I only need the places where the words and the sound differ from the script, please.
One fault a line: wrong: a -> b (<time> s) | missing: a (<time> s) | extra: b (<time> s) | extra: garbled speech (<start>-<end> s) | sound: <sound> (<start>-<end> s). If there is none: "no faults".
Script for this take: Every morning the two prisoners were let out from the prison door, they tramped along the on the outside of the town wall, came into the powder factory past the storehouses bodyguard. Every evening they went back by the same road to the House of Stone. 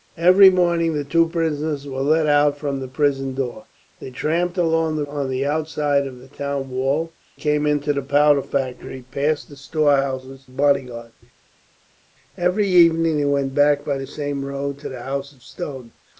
no faults